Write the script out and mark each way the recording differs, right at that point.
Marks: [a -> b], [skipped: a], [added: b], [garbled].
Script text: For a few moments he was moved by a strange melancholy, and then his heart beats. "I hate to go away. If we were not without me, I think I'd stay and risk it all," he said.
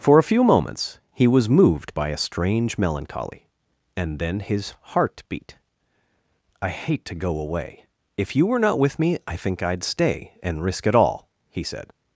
For a few moments he was moved by a strange melancholy, and then his heart [beats. -> beat] "I hate to go away. If [we -> you] were not [without -> with] me, I think I'd stay and risk it all," he said.